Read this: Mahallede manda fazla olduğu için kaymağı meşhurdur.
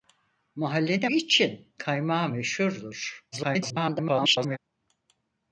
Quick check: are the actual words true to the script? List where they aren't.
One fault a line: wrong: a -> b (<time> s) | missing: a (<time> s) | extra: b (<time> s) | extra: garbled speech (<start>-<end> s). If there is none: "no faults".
missing: manda fazla olduğu (1.1 s)
extra: garbled speech (3.3-4.6 s)